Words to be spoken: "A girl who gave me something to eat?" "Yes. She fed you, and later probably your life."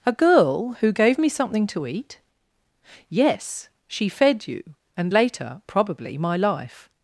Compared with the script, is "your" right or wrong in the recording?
wrong